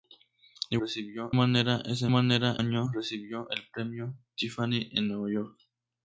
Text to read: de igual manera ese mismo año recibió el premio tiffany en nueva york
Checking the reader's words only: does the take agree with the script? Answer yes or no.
no